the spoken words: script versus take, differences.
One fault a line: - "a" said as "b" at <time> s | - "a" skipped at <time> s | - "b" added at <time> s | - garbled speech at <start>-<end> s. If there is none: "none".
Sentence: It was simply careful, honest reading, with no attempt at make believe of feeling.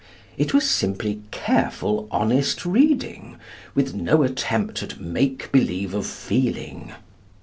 none